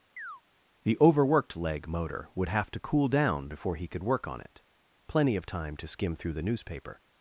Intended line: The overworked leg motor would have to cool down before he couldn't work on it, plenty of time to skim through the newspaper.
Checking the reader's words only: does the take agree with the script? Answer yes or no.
no